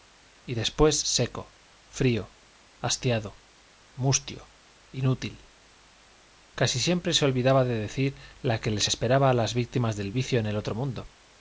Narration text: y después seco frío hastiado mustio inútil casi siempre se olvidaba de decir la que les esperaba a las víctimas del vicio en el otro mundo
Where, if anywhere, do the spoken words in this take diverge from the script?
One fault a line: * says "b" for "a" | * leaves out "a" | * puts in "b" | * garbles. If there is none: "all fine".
all fine